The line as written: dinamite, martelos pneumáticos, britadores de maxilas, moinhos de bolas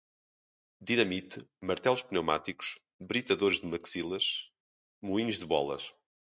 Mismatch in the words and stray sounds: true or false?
false